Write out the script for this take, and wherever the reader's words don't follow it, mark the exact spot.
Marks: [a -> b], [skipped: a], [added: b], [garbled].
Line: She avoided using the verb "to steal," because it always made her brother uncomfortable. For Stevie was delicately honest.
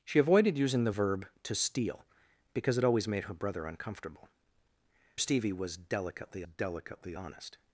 She avoided using the verb "to steal," because it always made her brother uncomfortable. [skipped: For] Stevie was delicately [added: delicately] honest.